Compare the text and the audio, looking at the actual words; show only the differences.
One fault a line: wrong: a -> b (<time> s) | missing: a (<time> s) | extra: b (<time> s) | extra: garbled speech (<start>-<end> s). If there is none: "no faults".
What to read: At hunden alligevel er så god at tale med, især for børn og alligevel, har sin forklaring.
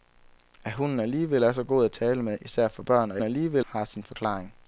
no faults